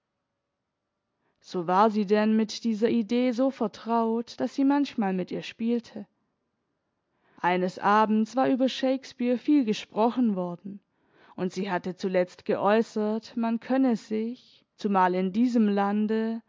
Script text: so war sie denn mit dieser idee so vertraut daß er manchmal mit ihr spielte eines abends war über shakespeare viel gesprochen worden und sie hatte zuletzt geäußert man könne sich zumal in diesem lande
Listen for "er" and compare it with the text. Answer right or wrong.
wrong